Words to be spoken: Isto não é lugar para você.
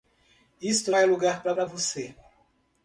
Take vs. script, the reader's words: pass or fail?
fail